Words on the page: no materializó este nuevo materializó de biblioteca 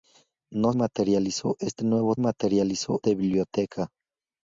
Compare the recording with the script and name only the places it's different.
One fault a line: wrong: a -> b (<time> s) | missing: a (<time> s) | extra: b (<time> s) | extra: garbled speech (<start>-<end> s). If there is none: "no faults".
no faults